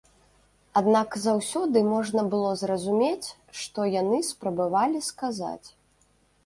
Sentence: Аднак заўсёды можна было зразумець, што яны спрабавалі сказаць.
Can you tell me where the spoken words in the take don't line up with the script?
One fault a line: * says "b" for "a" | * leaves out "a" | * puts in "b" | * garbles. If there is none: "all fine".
all fine